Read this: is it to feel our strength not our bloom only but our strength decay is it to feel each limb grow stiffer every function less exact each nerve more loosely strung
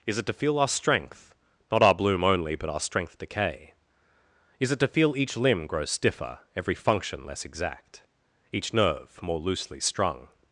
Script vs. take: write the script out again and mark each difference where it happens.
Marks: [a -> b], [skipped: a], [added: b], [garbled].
is it to feel our strength not our bloom only but our strength decay is it to feel each limb grow stiffer every function less exact each nerve more loosely strung